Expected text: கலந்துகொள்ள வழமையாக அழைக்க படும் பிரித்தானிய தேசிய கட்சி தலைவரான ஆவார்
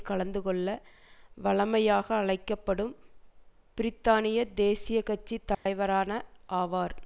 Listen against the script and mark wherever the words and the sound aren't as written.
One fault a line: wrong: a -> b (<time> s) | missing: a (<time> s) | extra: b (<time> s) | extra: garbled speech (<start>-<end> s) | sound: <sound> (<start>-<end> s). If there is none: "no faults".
sound: dropout (5.5-5.7 s)